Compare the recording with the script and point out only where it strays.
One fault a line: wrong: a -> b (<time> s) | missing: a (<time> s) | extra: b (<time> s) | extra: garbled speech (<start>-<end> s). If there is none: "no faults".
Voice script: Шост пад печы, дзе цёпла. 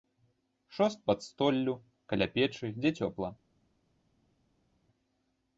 extra: столлю каля (1.3 s)